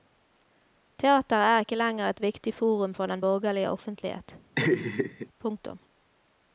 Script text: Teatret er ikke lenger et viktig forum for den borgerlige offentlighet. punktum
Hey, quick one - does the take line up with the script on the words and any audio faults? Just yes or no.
no